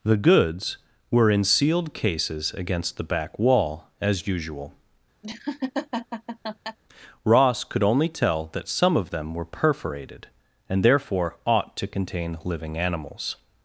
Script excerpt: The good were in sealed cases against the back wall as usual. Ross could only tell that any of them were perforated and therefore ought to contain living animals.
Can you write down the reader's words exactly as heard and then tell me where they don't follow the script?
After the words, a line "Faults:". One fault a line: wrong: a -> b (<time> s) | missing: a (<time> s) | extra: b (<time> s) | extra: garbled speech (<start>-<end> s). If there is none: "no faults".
The goods were in sealed cases against the back wall as usual. Ross could only tell that some of them were perforated and therefore ought to contain living animals.
Faults:
wrong: good -> goods (0.2 s)
wrong: any -> some (8.7 s)